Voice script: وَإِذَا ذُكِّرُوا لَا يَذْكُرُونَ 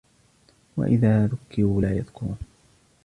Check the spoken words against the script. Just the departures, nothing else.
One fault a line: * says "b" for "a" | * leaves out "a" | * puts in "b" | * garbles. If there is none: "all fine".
all fine